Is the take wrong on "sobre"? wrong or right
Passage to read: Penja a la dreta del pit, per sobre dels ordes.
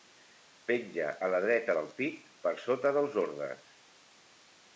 wrong